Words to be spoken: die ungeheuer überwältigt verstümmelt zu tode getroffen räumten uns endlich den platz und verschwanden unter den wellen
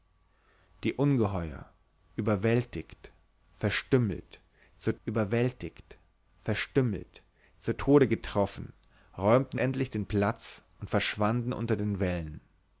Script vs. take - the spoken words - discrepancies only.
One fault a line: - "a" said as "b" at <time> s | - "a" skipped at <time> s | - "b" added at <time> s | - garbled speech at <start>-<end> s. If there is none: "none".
- "überwältigt verstümmelt zu" added at 5.0 s
- "uns" skipped at 9.6 s